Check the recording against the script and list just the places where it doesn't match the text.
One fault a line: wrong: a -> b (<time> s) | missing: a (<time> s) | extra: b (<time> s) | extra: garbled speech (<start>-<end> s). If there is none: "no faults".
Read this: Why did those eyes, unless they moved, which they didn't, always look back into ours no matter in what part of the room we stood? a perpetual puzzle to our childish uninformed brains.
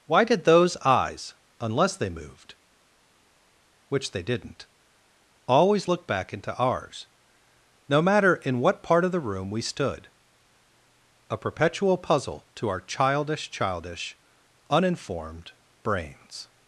extra: childish (13.5 s)